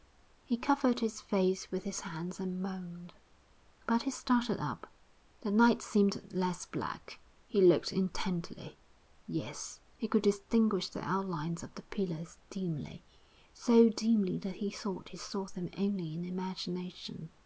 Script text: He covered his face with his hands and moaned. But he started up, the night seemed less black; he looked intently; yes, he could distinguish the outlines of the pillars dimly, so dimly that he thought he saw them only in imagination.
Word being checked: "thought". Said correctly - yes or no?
yes